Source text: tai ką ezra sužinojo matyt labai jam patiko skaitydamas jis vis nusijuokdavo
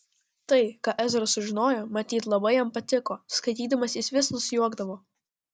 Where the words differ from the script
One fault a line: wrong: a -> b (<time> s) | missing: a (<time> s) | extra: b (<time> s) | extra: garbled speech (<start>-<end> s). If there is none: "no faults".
no faults